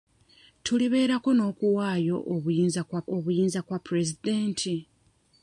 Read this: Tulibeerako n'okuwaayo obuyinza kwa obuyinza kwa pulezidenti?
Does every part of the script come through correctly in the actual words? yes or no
yes